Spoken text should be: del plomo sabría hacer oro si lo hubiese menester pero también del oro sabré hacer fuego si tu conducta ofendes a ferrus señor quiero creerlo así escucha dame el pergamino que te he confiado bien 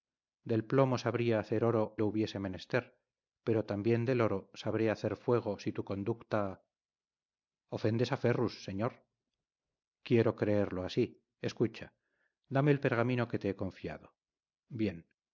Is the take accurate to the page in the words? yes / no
no